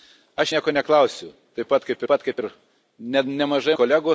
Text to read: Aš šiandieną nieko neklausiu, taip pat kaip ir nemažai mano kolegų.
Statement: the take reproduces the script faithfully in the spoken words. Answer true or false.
false